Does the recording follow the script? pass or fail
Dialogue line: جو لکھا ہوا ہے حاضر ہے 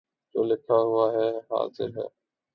pass